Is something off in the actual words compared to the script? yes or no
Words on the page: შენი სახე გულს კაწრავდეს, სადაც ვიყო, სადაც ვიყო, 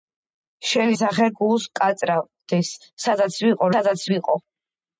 no